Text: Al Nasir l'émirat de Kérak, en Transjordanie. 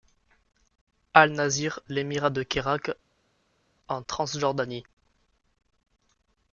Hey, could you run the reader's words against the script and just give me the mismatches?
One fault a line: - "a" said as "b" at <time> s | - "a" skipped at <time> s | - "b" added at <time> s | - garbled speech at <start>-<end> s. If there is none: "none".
none